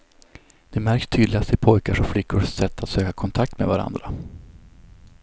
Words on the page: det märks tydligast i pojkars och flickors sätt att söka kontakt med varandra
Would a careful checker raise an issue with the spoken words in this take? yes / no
no